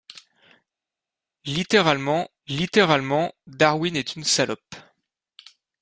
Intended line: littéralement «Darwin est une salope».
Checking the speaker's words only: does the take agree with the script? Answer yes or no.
no